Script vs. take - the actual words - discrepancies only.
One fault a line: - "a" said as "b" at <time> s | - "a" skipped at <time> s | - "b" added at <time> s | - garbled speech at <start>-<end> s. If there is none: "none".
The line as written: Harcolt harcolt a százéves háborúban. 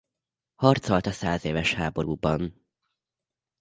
- "harcolt" skipped at 1.1 s